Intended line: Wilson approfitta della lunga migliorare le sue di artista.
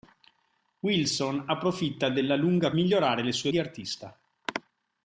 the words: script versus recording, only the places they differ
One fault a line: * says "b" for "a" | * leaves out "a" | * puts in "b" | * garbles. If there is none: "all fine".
all fine